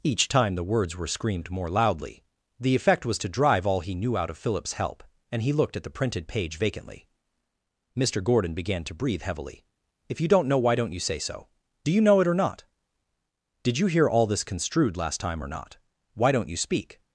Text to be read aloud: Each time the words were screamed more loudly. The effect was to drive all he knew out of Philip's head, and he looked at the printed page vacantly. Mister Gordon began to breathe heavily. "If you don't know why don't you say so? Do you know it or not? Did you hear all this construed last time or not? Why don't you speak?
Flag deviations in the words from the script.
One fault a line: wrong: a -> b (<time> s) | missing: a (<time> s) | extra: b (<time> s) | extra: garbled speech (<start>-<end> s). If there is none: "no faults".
wrong: head -> help (4.7 s)